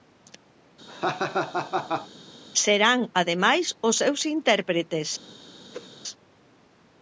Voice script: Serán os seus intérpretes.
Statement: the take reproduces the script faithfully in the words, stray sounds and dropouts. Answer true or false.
false